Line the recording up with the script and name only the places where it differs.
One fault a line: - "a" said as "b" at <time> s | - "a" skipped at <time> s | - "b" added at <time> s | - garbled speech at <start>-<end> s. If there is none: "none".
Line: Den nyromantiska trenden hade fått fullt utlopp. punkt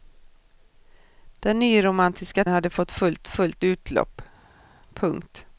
- "trenden" skipped at 2.5 s
- "fullt" added at 3.3 s